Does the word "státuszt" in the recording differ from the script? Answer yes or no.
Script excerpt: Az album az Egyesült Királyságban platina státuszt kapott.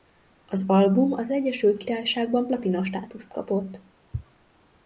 no